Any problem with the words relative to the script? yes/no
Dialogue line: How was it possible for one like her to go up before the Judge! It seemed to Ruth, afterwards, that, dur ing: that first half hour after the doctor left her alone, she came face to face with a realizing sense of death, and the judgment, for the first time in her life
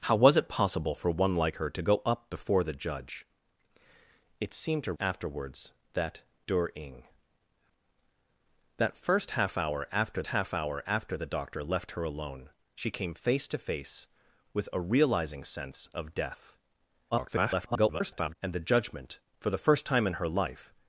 yes